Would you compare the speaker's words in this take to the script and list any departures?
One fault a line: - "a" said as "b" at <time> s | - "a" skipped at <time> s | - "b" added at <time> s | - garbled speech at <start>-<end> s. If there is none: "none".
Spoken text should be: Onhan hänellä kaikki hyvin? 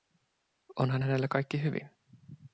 none